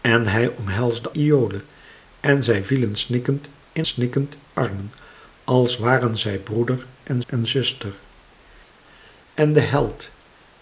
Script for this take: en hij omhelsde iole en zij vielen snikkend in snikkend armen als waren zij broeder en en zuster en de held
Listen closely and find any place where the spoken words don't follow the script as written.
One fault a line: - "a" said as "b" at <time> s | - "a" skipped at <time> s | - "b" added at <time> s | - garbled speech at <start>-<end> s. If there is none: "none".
none